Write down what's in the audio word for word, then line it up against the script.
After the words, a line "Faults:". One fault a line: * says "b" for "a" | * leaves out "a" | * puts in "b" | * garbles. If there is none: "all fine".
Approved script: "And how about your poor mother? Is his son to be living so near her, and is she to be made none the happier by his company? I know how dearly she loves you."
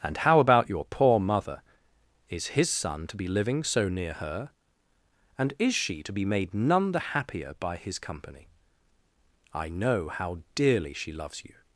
"And how about your poor mother? Is his son to be living so near her, and is she to be made none the happier by his company? I know how dearly she loves you."
Faults:
all fine